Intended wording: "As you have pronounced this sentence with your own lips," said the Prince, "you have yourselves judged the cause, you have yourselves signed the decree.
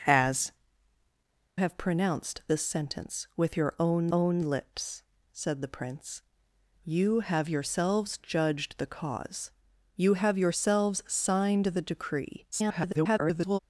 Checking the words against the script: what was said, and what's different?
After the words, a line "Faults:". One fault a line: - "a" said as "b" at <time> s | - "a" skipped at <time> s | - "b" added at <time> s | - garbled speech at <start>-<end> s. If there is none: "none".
"As have pronounced this sentence with your own own lips," said the Prince, "you have yourselves judged the cause, you have yourselves signed the decree. [garbled]
Faults:
- "you" skipped at 0.5 s
- "own" added at 4.1 s
- garbled speech at 12.5-13.6 s